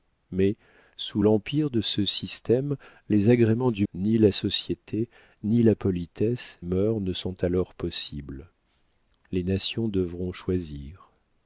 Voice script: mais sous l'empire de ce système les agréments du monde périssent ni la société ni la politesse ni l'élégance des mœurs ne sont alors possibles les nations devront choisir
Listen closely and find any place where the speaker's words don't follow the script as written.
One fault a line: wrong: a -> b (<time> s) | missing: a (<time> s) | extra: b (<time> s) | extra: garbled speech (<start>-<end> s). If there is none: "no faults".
missing: monde périssent (3.9 s)
missing: ni l'élégance des (6.6 s)